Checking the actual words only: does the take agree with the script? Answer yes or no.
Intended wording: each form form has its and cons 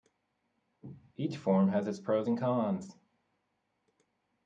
no